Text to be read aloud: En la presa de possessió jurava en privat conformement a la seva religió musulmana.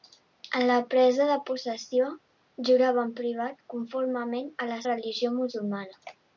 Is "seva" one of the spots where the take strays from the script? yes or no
yes